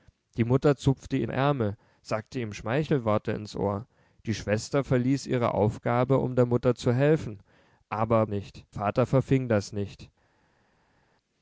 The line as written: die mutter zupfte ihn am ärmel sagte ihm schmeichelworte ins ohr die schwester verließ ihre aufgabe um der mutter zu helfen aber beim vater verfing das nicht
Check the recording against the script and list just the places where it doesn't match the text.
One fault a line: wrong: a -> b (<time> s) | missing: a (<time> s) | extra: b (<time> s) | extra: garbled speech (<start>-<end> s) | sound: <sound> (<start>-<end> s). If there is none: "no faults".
missing: am (1.3 s)
wrong: beim -> nicht (8.3 s)